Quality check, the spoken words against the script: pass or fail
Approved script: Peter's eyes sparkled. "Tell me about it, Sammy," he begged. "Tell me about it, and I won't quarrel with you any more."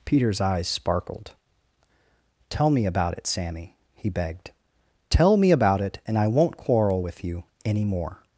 pass